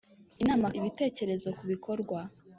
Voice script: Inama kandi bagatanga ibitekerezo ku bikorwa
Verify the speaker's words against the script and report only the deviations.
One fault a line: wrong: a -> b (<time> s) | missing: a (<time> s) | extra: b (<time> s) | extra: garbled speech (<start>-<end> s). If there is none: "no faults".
missing: kandi bagatanga (0.7 s)